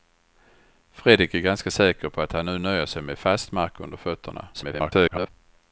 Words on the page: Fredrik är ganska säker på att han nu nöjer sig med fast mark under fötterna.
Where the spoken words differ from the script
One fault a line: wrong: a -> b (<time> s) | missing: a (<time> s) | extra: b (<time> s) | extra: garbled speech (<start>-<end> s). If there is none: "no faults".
extra: garbled speech (4.5-5.3 s)